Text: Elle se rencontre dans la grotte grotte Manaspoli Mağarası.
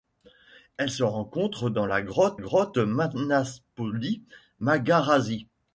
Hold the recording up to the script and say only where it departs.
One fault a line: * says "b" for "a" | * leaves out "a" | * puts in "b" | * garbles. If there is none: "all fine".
all fine